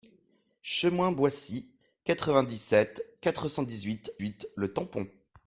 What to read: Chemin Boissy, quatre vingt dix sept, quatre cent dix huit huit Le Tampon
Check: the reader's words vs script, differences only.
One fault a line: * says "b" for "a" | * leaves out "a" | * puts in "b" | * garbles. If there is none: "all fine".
all fine